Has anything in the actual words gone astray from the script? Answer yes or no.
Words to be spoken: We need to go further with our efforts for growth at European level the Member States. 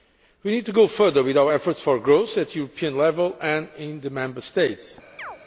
yes